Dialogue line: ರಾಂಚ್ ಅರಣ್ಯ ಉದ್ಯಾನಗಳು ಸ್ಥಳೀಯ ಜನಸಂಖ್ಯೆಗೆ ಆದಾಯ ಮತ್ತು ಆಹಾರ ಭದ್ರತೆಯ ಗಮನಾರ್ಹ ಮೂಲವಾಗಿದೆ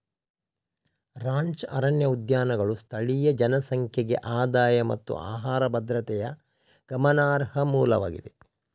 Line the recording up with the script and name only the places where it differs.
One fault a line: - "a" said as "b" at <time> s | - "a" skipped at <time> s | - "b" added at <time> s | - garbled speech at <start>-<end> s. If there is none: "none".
none